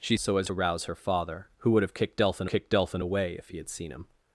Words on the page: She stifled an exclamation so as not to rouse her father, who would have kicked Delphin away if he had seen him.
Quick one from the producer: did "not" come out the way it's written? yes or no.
no